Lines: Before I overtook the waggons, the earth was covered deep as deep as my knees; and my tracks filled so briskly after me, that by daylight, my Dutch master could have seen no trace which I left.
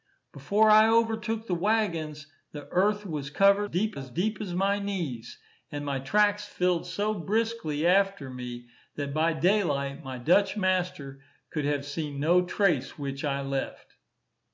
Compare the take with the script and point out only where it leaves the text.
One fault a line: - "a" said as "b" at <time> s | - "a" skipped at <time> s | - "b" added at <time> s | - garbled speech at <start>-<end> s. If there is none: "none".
none